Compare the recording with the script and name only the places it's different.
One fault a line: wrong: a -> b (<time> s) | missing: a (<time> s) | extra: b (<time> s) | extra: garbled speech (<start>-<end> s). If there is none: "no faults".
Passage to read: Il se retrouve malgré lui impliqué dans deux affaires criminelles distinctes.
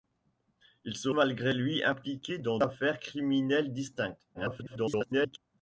missing: retrouve (1.1 s)
missing: deux (2.6 s)
extra: garbled speech (4.3-5.4 s)